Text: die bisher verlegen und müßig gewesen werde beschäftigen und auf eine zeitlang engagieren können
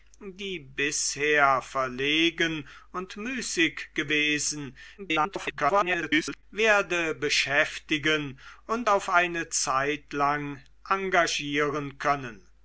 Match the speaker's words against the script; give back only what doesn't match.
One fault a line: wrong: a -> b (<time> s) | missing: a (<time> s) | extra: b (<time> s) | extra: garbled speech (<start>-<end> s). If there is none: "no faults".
extra: garbled speech (5.0-6.4 s)